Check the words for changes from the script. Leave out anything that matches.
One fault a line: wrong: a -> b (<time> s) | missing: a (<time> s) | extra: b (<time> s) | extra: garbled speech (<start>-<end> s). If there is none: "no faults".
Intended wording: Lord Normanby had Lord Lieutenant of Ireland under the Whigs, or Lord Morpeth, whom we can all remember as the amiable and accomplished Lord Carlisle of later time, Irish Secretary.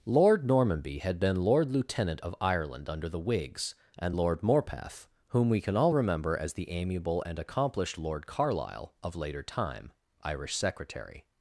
extra: been (1.2 s)
wrong: or -> and (4.0 s)